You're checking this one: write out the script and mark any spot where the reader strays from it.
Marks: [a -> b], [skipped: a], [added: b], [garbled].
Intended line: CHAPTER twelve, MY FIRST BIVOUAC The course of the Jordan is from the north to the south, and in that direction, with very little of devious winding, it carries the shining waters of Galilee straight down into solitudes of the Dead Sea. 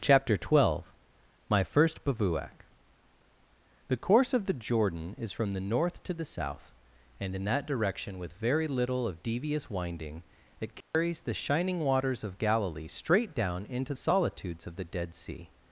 CHAPTER twelve, MY FIRST BIVOUAC The course of the Jordan is from the north to the south, and in that direction, with very little of devious winding, it carries the shining waters of Galilee straight down into solitudes of the Dead Sea.